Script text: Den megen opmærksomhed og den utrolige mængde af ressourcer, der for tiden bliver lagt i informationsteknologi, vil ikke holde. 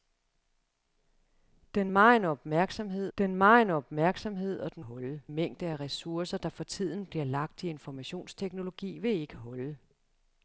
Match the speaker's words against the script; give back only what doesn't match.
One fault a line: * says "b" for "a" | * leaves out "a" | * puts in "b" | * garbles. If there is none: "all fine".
* puts in "den megen opmærksomhed"
* says "holde" for "utrolige"